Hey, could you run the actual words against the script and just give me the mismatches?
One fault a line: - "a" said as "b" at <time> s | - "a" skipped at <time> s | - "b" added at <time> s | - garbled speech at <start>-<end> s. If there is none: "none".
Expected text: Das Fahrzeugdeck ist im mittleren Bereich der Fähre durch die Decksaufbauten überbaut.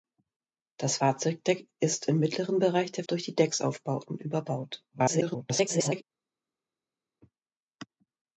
- "Fähre" skipped at 3.0 s
- garbled speech at 4.9-6.0 s